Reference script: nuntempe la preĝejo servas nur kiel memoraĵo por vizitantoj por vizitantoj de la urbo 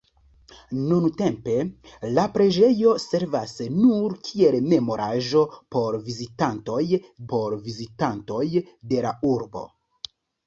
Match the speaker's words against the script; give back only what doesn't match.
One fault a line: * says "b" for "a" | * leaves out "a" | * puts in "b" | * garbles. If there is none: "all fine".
all fine